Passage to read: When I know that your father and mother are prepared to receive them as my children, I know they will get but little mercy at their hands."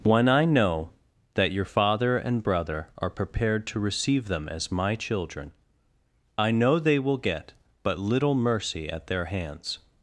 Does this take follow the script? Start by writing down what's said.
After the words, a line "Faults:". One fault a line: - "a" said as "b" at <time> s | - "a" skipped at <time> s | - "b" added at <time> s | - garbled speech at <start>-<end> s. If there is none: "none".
When I know that your father and brother are prepared to receive them as my children, I know they will get but little mercy at their hands."
Faults:
- "mother" said as "brother" at 2.4 s